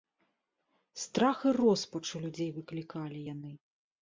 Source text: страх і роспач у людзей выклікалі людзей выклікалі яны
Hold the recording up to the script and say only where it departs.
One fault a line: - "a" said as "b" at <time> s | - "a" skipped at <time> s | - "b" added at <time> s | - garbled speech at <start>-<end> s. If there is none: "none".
- "людзей выклікалі" skipped at 3.2 s